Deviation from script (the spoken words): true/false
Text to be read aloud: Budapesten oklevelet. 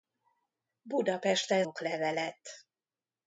false